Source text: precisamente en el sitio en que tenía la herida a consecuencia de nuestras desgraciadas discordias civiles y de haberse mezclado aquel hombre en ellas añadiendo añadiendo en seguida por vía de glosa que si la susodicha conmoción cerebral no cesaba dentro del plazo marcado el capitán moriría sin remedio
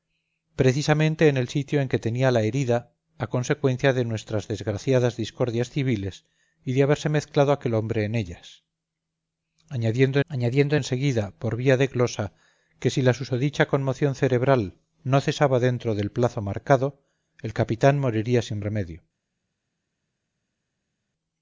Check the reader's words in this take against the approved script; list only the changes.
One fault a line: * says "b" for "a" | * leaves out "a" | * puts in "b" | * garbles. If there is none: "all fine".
all fine